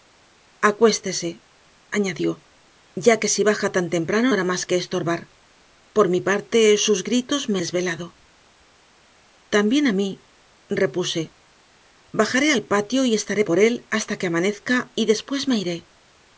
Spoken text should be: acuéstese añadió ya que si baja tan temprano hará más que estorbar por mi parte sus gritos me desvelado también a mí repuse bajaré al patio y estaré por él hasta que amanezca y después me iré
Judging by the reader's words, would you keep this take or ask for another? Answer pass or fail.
pass